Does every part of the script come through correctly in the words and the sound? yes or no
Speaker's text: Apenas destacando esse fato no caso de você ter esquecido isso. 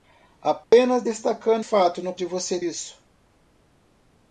no